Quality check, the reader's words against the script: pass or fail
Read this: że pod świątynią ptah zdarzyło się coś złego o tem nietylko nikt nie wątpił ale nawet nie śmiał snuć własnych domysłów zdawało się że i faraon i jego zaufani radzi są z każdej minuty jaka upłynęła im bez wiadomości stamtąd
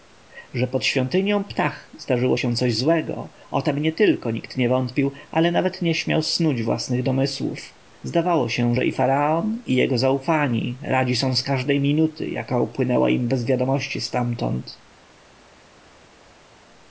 pass